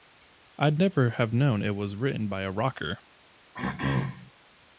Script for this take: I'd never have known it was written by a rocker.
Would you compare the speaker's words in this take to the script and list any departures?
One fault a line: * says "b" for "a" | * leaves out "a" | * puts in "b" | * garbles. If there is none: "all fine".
all fine